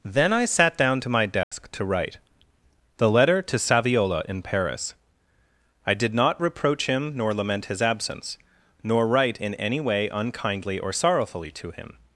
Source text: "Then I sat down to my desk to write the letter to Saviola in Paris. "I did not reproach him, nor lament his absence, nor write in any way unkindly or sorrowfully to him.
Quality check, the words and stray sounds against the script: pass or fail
fail